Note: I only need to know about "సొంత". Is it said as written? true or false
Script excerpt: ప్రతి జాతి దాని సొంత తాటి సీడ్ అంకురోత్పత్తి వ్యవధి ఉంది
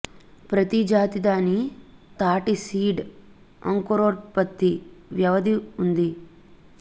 false